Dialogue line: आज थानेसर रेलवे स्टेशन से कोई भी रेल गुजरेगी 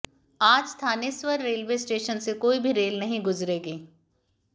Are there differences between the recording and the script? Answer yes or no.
yes